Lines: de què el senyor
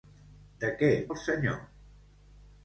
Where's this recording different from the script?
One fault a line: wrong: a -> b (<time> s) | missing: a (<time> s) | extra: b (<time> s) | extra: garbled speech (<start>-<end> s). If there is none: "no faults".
no faults